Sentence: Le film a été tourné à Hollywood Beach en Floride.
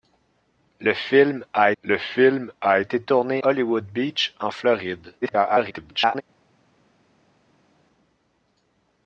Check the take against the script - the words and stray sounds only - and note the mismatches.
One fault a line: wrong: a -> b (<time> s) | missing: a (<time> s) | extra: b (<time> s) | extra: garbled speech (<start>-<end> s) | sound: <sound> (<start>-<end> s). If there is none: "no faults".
extra: le film a (1.8 s)
missing: à (3.4 s)
extra: garbled speech (5.2-6.2 s)